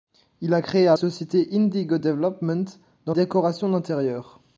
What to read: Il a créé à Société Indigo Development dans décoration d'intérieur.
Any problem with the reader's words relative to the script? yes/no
no